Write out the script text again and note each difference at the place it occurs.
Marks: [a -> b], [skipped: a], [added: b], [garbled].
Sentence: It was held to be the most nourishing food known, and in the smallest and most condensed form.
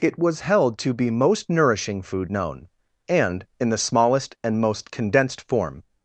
It was held to be [skipped: the] most nourishing food known, and in the smallest and most condensed form.